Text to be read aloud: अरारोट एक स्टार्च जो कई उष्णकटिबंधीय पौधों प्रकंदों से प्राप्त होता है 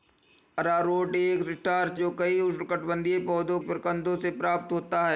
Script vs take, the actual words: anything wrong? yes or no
no